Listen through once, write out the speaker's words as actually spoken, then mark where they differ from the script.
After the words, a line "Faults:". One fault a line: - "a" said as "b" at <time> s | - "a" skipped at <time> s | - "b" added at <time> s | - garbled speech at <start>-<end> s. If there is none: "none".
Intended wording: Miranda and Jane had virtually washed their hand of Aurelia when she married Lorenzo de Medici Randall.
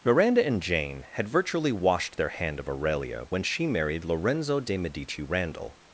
Miranda and Jane had virtually washed their hand of Aurelia when she married Lorenzo de Medici Randall.
Faults:
none